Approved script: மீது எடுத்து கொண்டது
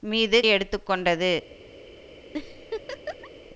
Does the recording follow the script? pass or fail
pass